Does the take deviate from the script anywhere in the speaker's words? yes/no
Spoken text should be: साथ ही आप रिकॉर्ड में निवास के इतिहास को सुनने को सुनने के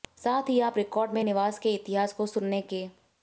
yes